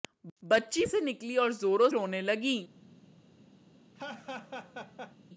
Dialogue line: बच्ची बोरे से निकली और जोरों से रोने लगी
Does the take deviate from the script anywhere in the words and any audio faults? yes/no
yes